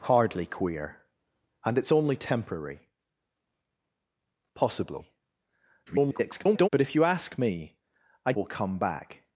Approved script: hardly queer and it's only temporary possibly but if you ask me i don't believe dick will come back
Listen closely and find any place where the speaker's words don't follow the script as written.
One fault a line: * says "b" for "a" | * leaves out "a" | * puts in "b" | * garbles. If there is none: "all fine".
* garbles
* leaves out "don't believe dick"